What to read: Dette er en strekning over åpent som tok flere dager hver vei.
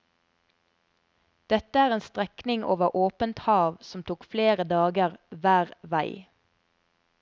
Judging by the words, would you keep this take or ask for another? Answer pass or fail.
fail